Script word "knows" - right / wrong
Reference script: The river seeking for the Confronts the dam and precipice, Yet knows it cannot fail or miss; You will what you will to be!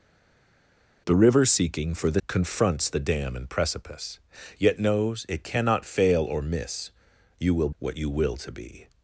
right